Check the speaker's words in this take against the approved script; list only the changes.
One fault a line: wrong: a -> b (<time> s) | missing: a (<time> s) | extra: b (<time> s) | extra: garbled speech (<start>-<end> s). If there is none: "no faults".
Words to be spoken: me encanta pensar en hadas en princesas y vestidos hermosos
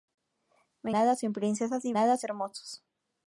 missing: encanta pensar en (0.9 s)
wrong: vestidos -> hadas (1.9 s)